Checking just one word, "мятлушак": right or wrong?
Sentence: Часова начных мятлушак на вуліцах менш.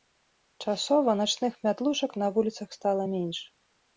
right